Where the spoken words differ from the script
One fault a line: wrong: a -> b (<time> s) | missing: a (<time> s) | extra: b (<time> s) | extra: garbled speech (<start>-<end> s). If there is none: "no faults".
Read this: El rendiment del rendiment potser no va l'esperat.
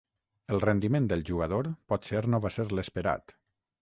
wrong: rendiment -> jugador (1.3 s)
extra: ser (2.6 s)